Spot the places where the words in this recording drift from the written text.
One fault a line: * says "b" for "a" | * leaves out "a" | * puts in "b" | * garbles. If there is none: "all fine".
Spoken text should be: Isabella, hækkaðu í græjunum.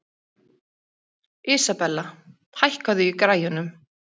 all fine